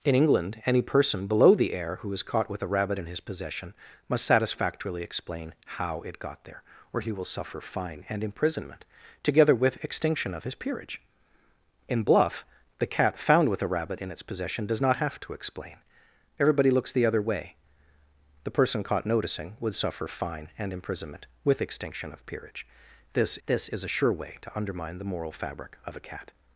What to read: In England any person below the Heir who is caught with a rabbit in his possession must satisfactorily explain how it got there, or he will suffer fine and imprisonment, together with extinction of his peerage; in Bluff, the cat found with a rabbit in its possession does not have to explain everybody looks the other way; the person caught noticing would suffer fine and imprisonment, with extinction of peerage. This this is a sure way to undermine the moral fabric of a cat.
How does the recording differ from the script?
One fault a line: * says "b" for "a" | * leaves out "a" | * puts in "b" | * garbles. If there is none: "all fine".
all fine